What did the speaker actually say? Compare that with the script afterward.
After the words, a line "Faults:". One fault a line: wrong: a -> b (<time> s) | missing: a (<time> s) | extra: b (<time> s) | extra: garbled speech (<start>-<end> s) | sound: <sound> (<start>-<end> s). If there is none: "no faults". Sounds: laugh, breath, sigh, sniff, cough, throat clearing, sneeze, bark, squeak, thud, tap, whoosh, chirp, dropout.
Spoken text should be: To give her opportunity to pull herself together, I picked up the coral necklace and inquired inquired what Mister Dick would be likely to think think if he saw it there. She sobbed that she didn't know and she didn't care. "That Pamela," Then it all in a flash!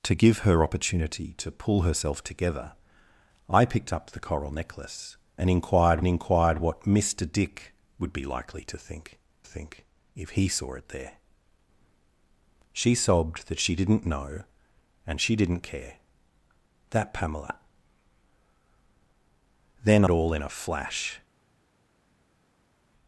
To give her opportunity to pull herself together, I picked up the coral necklace and inquired inquired what Mister Dick would be likely to think think if he saw it there. She sobbed that she didn't know and she didn't care. "That Pamela," Then it all in a flash!
Faults:
no faults